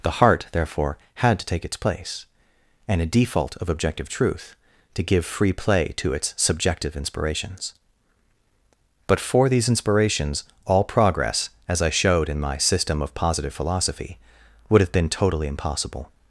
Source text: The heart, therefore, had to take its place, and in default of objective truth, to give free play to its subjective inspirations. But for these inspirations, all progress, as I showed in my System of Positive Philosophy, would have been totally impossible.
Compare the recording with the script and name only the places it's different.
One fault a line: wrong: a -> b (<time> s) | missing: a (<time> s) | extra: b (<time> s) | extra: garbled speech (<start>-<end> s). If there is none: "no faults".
wrong: in -> a (3.0 s)